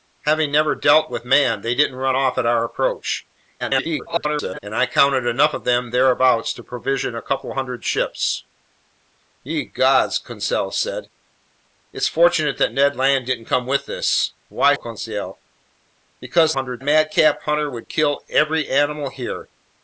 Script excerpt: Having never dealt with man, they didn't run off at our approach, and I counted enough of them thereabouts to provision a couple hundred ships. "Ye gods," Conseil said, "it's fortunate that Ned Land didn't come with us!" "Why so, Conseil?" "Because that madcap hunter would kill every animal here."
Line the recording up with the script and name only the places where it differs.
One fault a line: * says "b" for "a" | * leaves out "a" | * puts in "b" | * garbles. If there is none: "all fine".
* garbles
* leaves out "so"
* says "hundred" for "that"